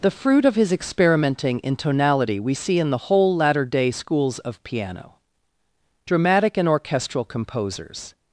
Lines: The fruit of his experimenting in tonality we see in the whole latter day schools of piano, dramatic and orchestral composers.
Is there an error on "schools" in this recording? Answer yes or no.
no